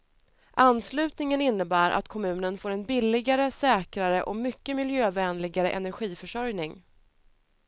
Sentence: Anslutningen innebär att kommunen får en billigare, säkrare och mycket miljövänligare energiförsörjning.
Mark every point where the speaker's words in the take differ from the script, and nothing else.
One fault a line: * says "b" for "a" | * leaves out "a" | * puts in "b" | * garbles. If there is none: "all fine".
all fine